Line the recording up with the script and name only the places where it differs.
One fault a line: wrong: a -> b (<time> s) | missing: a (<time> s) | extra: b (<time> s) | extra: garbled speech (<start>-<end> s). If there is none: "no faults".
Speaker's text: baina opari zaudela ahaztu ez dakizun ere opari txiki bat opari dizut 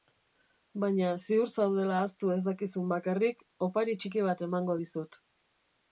wrong: opari -> ziur (1.2 s)
wrong: ere -> bakarrik (3.0 s)
wrong: opari -> emango (4.5 s)